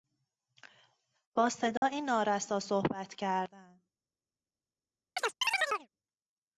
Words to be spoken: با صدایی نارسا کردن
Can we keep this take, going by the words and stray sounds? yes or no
no